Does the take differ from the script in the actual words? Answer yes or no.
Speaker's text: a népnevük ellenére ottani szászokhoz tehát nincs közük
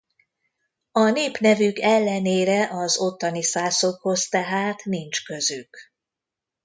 yes